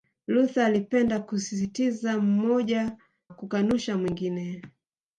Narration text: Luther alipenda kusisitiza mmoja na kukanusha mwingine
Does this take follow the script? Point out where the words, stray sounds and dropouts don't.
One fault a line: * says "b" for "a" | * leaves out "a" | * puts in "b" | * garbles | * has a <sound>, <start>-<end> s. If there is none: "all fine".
* leaves out "na"